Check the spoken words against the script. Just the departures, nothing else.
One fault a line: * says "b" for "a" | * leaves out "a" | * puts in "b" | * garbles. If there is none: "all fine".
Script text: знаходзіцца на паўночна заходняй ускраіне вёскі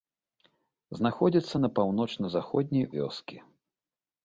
* leaves out "ускраіне"